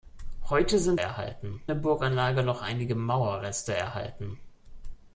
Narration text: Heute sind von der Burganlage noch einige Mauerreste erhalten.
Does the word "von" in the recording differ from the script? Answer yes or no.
yes